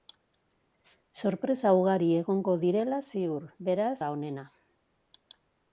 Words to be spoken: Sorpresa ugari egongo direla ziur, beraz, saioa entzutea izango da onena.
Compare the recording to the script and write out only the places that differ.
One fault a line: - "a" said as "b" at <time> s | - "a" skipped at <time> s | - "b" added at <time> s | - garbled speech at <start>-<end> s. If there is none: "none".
- "saioa entzutea izango" skipped at 3.9 s